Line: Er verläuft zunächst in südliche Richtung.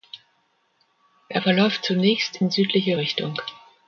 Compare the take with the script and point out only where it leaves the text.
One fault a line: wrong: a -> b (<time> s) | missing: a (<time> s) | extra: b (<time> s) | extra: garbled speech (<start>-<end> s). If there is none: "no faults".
no faults